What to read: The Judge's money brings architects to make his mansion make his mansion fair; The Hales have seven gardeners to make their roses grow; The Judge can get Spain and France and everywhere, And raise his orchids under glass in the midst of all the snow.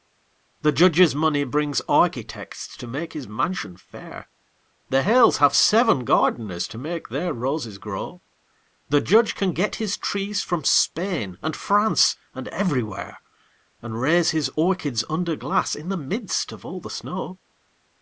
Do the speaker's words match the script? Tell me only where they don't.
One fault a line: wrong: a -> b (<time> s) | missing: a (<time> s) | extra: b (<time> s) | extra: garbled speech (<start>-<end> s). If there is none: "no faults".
missing: make his mansion (3.8 s)
extra: his trees from (9.8 s)